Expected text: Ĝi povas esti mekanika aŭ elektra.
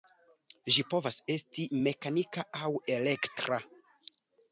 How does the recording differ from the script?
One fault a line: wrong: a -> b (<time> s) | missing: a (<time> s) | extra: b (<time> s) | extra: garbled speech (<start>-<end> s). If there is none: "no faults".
no faults